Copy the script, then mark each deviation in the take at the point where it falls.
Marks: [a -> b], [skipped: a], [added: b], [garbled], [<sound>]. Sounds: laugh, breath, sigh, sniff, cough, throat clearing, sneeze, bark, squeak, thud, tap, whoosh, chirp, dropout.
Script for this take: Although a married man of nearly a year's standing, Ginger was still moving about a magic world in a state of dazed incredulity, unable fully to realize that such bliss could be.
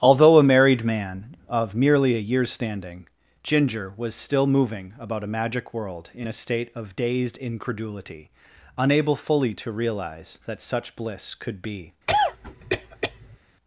Although a married man of [nearly -> merely] a year's standing, Ginger was still moving about a magic world in a state of dazed incredulity, unable fully to realize that such bliss could be. [cough]